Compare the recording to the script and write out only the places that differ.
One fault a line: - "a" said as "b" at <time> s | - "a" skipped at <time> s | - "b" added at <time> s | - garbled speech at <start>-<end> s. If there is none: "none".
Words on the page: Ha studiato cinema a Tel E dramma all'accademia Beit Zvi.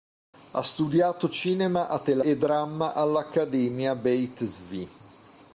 none